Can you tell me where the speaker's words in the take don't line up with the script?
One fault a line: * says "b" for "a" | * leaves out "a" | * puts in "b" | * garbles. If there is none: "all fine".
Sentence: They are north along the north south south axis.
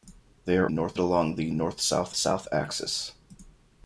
all fine